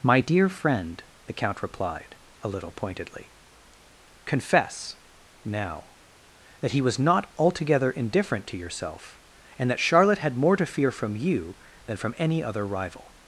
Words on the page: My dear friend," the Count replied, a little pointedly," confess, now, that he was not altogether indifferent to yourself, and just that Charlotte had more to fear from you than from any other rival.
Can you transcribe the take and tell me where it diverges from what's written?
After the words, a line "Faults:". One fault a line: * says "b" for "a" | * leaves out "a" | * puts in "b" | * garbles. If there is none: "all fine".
My dear friend," the Count replied, a little pointedly," confess, now, that he was not altogether indifferent to yourself, and that Charlotte had more to fear from you than from any other rival.
Faults:
* leaves out "just"